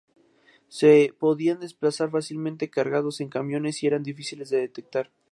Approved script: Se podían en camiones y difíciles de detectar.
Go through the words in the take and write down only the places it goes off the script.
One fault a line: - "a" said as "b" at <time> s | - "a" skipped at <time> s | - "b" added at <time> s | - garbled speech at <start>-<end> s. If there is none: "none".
- "desplazar fácilmente cargados" added at 1.6 s
- "eran" added at 3.9 s